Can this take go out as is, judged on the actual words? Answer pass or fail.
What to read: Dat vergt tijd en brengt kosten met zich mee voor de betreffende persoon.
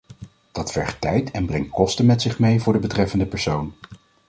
pass